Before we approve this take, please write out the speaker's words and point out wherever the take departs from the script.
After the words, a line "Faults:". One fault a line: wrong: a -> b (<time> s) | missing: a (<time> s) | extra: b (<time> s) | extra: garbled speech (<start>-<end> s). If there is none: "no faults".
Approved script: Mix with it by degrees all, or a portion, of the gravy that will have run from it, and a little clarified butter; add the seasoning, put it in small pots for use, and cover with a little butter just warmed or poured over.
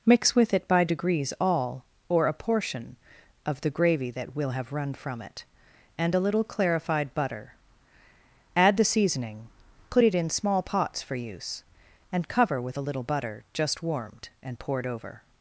Mix with it by degrees all, or a portion, of the gravy that will have run from it, and a little clarified butter; add the seasoning, put it in small pots for use, and cover with a little butter just warmed and poured over.
Faults:
wrong: or -> and (14.4 s)